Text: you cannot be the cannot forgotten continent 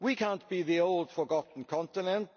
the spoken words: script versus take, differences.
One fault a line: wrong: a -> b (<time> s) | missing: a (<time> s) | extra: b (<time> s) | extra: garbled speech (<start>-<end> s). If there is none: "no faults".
wrong: you -> we (0.0 s)
wrong: cannot -> old (0.8 s)